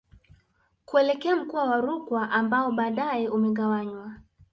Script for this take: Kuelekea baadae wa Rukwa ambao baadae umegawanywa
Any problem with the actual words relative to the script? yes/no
yes